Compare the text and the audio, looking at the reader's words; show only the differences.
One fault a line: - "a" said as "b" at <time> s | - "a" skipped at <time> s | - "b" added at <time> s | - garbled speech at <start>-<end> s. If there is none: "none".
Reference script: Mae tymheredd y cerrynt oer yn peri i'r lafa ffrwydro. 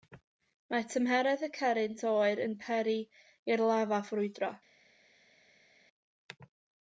none